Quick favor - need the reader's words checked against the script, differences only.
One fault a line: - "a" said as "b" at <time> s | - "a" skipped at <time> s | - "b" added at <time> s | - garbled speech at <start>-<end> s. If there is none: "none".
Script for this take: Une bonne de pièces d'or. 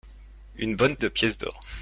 none